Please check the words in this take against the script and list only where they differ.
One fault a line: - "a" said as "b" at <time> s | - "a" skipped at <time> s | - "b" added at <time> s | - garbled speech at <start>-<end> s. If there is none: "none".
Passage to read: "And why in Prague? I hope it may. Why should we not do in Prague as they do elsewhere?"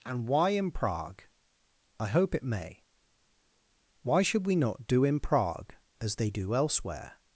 none